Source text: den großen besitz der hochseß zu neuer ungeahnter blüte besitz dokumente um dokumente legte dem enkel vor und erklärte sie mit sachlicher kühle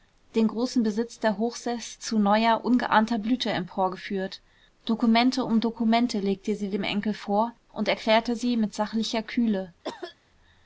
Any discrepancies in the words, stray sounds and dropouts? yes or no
yes